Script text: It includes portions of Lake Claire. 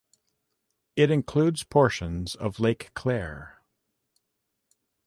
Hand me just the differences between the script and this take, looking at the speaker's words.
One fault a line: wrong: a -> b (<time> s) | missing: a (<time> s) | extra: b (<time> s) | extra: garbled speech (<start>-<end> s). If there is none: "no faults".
no faults